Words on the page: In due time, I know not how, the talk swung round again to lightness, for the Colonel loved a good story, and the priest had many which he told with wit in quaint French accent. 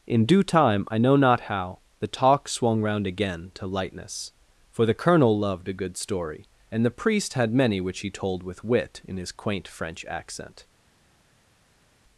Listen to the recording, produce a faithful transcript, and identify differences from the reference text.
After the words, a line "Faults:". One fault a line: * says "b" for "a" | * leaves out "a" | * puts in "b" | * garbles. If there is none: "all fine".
In due time, I know not how, the talk swung round again to lightness, for the Colonel loved a good story, and the priest had many which he told with wit in his quaint French accent.
Faults:
* puts in "his"